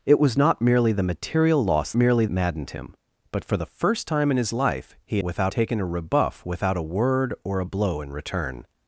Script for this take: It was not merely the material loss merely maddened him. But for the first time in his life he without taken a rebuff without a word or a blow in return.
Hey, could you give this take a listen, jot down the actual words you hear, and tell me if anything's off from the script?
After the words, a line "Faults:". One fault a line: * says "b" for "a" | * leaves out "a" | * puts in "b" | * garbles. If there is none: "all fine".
It was not merely the material loss merely maddened him. But for the first time in his life he without taken a rebuff without a word or a blow in return.
Faults:
all fine